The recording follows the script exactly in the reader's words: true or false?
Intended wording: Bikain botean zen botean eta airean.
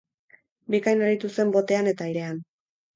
false